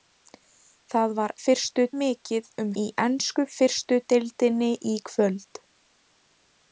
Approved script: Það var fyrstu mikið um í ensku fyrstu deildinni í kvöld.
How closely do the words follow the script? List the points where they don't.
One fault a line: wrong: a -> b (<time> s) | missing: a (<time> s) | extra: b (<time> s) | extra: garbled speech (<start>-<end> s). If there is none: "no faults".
no faults